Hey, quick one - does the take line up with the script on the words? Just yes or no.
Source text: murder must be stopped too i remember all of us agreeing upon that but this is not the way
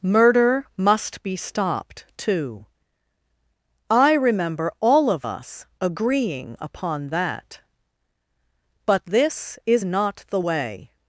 yes